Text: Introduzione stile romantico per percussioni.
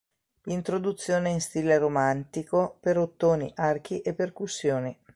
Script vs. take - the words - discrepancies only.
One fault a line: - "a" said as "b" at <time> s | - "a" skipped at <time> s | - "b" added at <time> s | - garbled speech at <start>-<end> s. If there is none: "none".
- "in" added at 1.3 s
- "ottoni archi e" added at 3.0 s